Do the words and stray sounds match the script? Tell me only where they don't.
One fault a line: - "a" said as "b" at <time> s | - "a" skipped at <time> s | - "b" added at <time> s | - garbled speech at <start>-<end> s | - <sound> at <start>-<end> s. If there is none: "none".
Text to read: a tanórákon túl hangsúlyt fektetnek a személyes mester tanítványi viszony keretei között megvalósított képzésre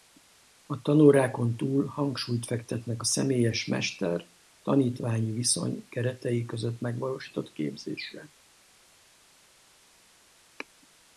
none